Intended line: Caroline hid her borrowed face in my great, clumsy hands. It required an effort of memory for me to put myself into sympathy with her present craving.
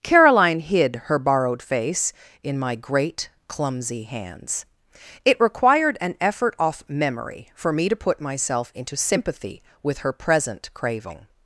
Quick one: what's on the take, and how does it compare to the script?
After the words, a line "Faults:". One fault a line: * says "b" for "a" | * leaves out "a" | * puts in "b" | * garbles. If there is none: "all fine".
Caroline hid her borrowed face in my great, clumsy hands. It required an effort off memory for me to put myself into sympathy with her present craving.
Faults:
* says "off" for "of"